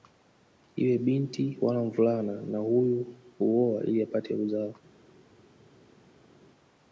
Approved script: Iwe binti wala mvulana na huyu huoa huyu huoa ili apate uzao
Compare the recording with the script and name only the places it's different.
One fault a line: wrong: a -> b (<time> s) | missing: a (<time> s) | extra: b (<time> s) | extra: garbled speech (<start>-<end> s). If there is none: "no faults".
missing: huyu huoa (3.8 s)